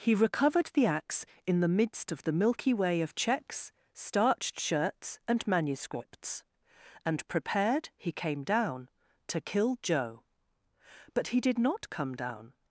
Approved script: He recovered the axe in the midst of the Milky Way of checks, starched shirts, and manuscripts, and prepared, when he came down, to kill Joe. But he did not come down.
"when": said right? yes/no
no